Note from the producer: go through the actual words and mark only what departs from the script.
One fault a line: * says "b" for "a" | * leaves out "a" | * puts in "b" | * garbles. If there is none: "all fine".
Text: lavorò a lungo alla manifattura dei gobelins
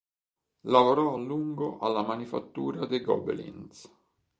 all fine